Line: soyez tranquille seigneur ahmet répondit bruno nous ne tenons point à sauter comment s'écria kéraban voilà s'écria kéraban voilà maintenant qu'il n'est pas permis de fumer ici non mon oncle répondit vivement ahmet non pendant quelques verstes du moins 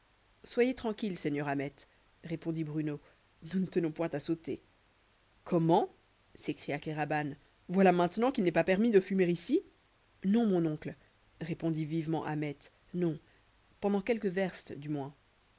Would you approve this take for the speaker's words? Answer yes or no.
no